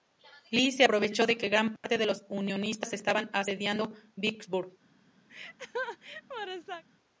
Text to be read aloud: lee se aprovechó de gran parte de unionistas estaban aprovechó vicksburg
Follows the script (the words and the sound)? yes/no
no